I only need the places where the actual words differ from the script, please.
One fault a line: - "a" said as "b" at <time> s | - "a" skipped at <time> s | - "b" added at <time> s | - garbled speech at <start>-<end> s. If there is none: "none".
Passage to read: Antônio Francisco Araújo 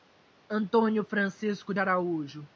none